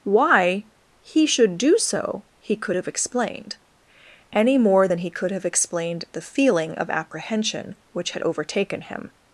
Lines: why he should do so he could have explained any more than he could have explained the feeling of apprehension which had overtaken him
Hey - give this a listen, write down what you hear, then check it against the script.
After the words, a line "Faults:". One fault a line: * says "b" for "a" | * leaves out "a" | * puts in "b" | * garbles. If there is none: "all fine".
why he should do so he could have explained any more than he could have explained the feeling of apprehension which had overtaken him
Faults:
all fine